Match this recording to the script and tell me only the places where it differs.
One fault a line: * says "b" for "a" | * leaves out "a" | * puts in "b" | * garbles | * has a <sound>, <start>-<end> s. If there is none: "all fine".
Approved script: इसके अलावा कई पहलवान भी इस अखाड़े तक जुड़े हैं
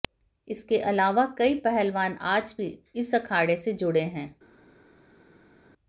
* puts in "आज"
* says "से" for "तक"